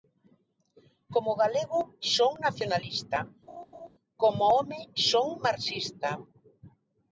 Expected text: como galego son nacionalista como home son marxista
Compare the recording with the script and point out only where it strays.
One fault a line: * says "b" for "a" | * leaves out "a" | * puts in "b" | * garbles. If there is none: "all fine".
all fine